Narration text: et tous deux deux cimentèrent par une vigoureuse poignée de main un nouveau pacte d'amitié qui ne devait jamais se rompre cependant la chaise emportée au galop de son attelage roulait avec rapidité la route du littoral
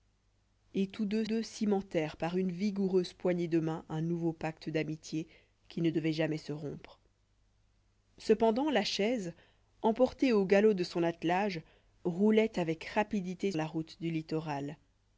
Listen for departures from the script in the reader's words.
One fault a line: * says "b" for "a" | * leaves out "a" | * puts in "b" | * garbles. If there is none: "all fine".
all fine